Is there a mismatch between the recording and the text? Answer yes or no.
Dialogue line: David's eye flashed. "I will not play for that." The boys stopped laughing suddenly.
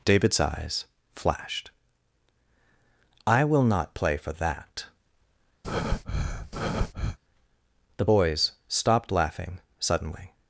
yes